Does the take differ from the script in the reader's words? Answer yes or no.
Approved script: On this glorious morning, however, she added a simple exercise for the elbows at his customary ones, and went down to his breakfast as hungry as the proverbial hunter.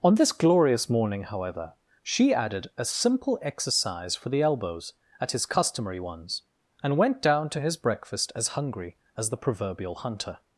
no